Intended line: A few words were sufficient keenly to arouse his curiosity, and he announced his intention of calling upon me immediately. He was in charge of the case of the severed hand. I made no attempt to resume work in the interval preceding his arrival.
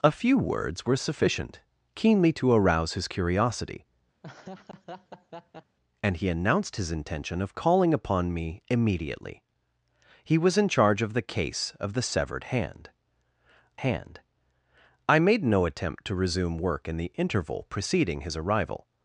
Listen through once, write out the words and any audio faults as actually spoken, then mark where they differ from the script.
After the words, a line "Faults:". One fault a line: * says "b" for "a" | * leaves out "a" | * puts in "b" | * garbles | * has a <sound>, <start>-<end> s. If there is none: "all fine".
A few words were sufficient keenly to arouse his curiosity, and he announced his intention of calling upon me immediately. He was in charge of the case of the severed hand hand. I made no attempt to resume work in the interval preceding his arrival.
Faults:
* has a laugh, 4.2-5.8 s
* puts in "hand"